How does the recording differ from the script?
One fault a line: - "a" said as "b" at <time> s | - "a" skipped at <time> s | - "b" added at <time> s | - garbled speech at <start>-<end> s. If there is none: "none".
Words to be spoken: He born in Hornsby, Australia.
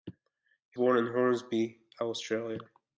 none